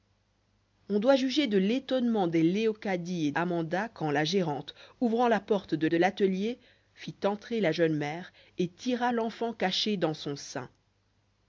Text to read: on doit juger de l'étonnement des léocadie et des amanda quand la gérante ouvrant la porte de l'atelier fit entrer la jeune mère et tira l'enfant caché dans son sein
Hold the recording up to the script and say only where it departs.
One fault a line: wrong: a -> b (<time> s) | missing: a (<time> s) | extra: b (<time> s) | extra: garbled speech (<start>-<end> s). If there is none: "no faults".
missing: des (3.3 s)
extra: de (5.8 s)